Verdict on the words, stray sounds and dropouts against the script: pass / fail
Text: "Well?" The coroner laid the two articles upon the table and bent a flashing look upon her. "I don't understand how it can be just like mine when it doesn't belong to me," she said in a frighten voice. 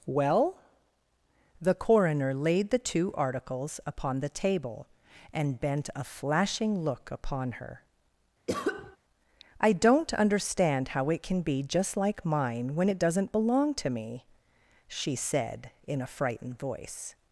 fail